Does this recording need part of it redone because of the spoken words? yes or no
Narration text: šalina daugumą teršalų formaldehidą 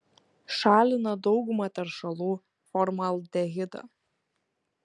no